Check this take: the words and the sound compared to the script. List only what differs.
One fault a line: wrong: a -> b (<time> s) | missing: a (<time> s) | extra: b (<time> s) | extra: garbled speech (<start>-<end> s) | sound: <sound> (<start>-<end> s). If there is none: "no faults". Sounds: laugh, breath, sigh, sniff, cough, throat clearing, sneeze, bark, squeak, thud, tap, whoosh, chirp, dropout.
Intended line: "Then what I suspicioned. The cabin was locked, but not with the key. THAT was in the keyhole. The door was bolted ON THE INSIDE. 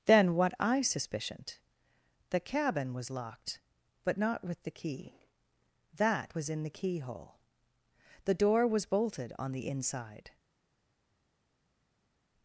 no faults